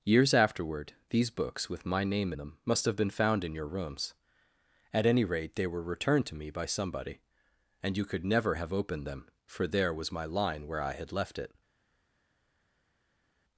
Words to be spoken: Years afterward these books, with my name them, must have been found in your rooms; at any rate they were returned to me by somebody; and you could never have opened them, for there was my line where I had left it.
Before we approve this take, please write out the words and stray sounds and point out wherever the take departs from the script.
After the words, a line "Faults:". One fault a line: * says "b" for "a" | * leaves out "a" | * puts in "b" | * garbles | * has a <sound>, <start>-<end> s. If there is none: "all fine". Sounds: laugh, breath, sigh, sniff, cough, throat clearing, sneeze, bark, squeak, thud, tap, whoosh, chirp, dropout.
Years afterward these books, with my name them, must have been found in your rooms; at any rate they were returned to me by somebody; and you could never have opened them, for there was my line where I had left it.
Faults:
all fine